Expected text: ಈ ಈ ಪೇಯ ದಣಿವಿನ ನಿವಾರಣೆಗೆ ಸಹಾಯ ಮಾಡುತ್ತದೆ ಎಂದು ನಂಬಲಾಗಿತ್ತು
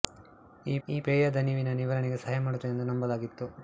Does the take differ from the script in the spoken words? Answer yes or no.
no